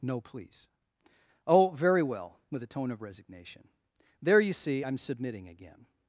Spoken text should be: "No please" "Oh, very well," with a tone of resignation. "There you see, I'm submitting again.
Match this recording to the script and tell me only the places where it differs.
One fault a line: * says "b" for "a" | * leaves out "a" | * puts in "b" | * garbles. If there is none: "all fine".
all fine